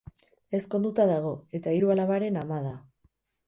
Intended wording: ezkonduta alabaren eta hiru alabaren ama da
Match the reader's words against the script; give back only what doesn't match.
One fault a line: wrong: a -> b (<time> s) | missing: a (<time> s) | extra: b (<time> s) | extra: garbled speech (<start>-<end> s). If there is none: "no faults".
wrong: alabaren -> dago (1.1 s)